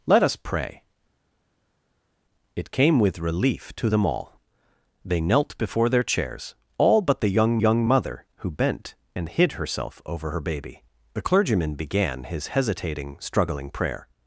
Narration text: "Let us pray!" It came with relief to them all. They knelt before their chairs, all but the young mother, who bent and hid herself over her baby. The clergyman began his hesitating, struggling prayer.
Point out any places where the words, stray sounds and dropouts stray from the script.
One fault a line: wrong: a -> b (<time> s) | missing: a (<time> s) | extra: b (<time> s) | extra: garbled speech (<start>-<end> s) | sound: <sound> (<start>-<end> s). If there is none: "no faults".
extra: young (7.6 s)